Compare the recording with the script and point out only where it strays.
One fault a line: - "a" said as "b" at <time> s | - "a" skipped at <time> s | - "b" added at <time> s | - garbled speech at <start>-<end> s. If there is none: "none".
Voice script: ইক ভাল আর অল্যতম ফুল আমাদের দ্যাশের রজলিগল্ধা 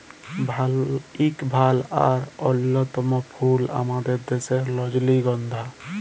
none